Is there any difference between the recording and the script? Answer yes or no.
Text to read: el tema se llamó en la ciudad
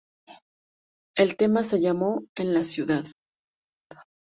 no